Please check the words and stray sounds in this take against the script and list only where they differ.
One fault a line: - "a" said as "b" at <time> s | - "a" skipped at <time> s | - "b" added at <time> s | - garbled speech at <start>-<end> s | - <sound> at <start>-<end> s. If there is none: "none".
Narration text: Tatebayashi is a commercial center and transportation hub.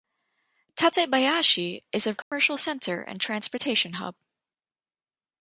- dropout at 2.2-2.3 s